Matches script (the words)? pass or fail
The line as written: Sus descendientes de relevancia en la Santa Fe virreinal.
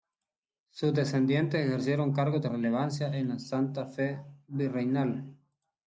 fail